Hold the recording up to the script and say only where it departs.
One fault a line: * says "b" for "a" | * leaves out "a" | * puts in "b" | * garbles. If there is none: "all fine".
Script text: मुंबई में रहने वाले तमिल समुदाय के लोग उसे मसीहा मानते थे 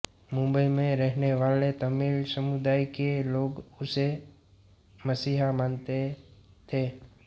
all fine